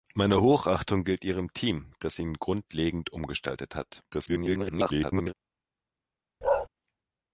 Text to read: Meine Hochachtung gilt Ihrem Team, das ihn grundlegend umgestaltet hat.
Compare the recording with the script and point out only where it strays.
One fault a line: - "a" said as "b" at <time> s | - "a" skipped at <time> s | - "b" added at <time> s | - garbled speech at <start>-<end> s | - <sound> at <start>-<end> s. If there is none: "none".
- garbled speech at 4.1-5.3 s
- bark at 6.4-6.7 s